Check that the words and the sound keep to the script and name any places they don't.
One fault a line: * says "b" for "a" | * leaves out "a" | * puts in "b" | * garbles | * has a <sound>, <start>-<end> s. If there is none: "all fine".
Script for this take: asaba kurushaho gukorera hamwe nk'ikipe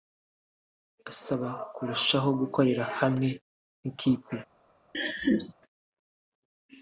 * has a laugh, 4.9-5.5 s